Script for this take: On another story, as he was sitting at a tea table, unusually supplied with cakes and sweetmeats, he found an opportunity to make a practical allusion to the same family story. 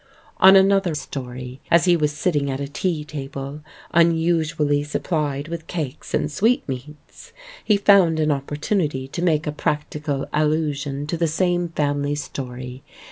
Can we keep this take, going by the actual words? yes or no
yes